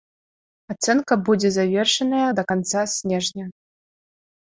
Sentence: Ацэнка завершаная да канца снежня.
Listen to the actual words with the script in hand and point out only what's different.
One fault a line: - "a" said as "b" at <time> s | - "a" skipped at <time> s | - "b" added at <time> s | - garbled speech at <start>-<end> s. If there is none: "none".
- "будзе" added at 1.3 s